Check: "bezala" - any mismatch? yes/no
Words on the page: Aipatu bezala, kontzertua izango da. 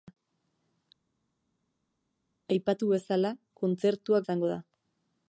no